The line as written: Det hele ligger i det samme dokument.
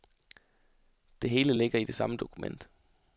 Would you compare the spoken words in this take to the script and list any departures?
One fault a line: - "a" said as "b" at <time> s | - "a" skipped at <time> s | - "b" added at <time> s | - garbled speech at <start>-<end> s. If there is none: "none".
none